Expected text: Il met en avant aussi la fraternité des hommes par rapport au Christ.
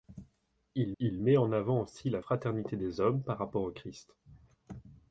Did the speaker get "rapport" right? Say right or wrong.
right